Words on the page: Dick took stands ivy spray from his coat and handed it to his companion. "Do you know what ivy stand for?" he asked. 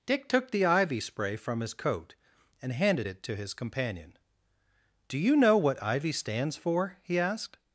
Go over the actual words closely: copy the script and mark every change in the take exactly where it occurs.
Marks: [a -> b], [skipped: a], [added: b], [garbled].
Dick took [stands -> the] ivy spray from his coat and handed it to his companion. "Do you know what ivy [stand -> stands] for?" he asked.